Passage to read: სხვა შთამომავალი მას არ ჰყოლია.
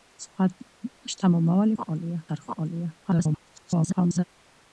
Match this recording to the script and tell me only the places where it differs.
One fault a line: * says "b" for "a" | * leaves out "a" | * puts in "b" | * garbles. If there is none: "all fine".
* says "ჰყოლია" for "მას"
* garbles